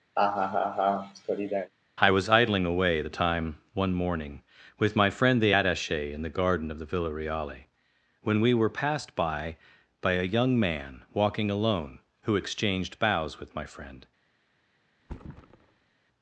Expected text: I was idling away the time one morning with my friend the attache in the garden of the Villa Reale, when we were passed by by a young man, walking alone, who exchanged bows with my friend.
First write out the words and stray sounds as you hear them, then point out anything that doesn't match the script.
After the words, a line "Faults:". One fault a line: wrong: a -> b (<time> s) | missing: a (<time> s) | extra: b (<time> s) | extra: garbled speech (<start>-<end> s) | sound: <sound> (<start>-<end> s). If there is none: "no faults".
I was idling away the time one morning with my friend the attache in the garden of the Villa Reale, when we were passed by by a young man, walking alone, who exchanged bows with my friend.
Faults:
sound: laugh (0.2-1.7 s)
sound: thud (15.0-15.9 s)